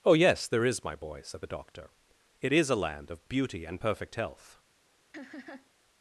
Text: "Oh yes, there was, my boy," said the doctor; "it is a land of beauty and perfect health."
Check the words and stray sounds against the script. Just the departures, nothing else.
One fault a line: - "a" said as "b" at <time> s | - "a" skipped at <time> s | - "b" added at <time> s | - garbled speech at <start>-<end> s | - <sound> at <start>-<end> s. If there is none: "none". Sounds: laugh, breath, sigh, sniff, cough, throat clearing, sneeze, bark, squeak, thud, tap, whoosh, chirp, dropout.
- "was" said as "is" at 0.7 s
- laugh at 5.1-5.7 s